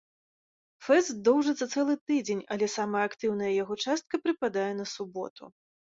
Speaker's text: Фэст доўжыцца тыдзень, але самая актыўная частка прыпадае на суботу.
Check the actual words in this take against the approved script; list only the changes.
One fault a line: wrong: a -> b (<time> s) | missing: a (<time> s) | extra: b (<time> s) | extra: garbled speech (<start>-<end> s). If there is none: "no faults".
extra: цэлы (1.7 s)
extra: яго (3.6 s)